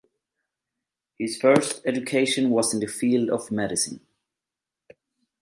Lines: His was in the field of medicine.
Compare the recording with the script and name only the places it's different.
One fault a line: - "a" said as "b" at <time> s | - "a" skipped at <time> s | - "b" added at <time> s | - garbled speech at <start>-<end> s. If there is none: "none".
- "first education" added at 1.3 s